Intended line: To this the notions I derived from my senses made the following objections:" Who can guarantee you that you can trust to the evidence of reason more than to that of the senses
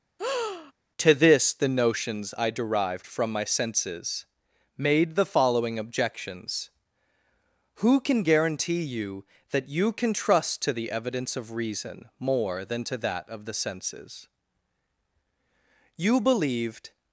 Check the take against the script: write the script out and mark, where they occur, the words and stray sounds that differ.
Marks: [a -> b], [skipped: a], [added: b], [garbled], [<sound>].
[breath] To this the notions I derived from my senses made the following objections:" Who can guarantee you that you can trust to the evidence of reason more than to that of the senses [added: You believed]